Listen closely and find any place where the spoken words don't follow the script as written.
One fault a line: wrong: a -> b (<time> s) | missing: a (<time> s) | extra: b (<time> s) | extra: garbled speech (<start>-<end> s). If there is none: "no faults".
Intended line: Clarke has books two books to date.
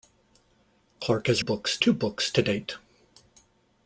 no faults